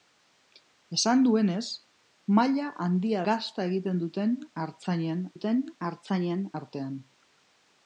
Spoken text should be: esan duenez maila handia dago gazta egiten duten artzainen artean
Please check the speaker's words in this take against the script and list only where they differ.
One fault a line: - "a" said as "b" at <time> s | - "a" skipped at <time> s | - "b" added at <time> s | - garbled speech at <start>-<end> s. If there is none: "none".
- "dago" skipped at 3.2 s
- "duten artzainen" added at 5.3 s